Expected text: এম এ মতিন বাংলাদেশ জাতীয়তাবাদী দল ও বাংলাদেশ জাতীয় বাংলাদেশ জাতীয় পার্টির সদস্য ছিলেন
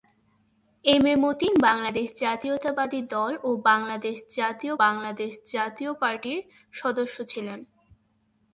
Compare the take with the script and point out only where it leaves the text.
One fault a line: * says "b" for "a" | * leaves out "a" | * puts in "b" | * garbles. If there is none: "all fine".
all fine